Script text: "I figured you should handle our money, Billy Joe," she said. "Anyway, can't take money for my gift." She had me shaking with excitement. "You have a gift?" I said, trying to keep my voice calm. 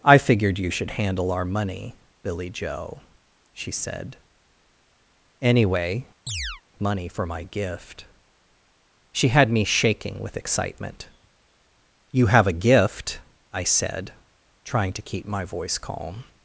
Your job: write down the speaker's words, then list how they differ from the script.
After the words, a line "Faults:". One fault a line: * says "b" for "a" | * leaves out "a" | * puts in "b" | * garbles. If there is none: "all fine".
"I figured you should handle our money, Billy Joe," she said. "Anyway, money for my gift." She had me shaking with excitement. "You have a gift?" I said, trying to keep my voice calm.
Faults:
* leaves out "can't take"